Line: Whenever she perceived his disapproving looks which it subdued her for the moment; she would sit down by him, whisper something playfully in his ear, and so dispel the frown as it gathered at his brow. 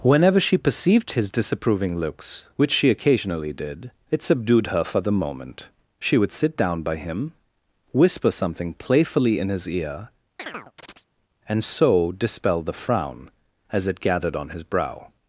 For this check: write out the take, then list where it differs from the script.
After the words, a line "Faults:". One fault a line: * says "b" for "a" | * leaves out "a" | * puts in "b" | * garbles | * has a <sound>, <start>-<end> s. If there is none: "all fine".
Whenever she perceived his disapproving looks which she occasionally did it subdued her for the moment; she would sit down by him, whisper something playfully in his ear, and so dispel the frown as it gathered on his brow.
Faults:
* puts in "she occasionally did"
* has a chirp, 10.4-11.1 s
* says "on" for "at"